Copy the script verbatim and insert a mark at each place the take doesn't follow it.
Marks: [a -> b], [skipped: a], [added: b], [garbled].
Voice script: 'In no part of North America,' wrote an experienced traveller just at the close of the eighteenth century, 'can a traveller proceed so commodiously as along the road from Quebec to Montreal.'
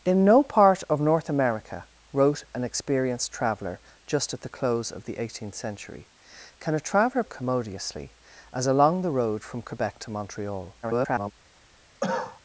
'In no part of North America,' wrote an experienced traveller just at the close of the eighteenth century, 'can a traveller [skipped: proceed so] commodiously as along the road from Quebec to Montreal.' [garbled]